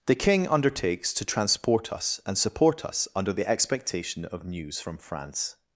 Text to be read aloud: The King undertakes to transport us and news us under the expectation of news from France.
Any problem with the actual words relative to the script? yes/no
yes